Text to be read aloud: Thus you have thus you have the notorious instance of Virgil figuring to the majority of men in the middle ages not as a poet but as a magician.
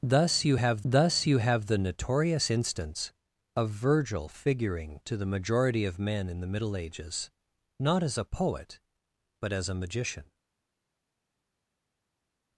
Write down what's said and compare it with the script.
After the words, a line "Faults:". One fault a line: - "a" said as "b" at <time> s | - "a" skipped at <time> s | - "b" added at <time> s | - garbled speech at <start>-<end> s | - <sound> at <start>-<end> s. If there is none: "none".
Thus you have thus you have the notorious instance of Virgil figuring to the majority of men in the middle ages not as a poet but as a magician.
Faults:
none